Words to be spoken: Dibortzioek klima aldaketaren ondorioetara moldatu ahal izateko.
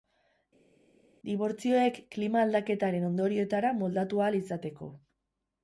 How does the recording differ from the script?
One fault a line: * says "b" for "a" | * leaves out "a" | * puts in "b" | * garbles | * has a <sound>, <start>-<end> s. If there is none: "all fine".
all fine